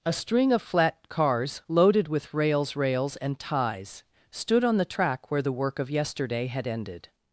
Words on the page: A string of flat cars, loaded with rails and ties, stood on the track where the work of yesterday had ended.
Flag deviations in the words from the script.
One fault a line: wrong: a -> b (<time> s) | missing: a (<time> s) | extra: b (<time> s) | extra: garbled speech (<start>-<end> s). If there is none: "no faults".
extra: rails (2.8 s)